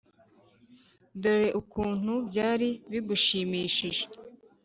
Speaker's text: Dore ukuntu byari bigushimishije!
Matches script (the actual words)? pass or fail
pass